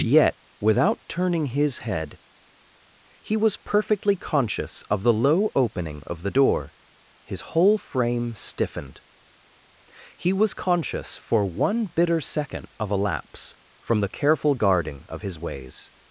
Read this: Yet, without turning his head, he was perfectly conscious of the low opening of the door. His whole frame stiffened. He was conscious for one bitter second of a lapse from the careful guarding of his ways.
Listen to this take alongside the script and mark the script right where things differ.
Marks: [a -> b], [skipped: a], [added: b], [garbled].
Yet, without turning his head, he was perfectly conscious of the low opening of the door. His whole frame stiffened. He was conscious for one bitter second of a lapse from the careful guarding of his ways.